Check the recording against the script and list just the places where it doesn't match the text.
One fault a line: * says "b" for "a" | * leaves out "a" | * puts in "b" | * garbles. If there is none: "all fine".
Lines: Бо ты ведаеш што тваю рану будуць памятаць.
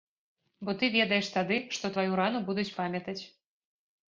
* puts in "тады"